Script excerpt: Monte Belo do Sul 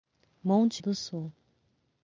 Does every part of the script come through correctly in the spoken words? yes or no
no